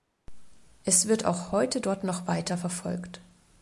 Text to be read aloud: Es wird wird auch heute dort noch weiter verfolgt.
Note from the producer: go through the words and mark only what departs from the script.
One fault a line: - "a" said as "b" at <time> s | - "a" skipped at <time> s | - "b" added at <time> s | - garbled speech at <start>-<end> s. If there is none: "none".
- "wird" skipped at 1.2 s